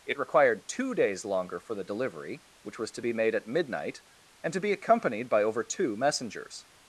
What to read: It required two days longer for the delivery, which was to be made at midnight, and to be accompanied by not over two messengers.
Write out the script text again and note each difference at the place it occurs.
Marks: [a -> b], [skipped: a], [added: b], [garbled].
It required two days longer for the delivery, which was to be made at midnight, and to be accompanied by [skipped: not] over two messengers.